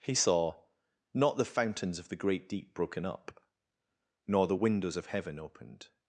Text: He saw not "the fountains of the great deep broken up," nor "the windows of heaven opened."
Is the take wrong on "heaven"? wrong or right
right